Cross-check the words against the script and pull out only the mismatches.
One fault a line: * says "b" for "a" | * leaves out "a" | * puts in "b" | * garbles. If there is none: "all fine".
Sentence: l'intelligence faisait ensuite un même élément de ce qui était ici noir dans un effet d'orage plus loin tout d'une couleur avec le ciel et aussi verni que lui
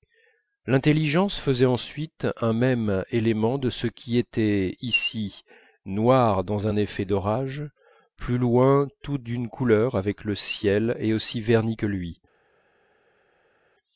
all fine